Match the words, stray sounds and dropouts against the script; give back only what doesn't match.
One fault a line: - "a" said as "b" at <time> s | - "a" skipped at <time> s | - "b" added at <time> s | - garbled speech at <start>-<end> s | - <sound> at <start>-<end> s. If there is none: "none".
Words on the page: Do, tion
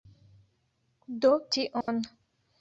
- dropout at 1.8-1.9 s